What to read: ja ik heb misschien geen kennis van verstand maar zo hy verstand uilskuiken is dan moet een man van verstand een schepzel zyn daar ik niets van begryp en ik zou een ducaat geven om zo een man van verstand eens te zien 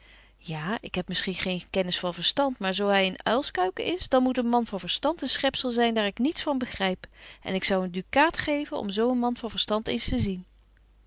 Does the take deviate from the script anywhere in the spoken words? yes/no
yes